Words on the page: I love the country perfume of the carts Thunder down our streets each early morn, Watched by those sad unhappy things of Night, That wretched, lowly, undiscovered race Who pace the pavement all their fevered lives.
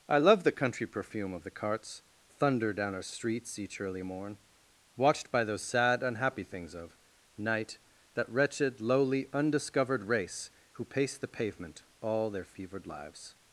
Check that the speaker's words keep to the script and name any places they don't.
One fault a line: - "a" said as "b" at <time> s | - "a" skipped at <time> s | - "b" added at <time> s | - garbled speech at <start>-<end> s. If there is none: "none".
none